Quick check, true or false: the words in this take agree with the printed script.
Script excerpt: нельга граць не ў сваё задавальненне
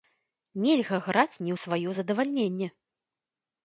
true